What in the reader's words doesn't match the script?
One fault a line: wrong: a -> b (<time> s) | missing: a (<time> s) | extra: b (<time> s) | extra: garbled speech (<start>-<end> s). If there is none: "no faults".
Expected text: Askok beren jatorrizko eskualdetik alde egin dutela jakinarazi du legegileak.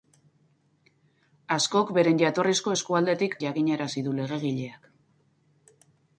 missing: alde egin dutela (3.4 s)